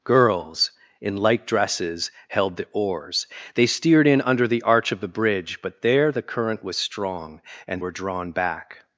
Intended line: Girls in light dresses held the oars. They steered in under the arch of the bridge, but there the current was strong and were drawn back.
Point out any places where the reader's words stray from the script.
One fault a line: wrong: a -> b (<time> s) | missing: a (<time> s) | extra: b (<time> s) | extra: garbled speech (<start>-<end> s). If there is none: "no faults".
no faults